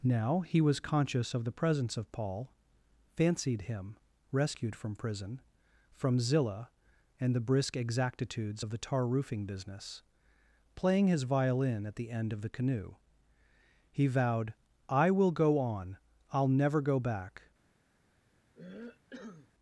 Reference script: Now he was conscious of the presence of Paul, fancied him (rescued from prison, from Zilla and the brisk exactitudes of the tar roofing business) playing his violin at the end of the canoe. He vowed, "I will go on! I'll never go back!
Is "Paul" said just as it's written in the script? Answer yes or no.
yes